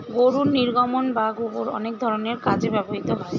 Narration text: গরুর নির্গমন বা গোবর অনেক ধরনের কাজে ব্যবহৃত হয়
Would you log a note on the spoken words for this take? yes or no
no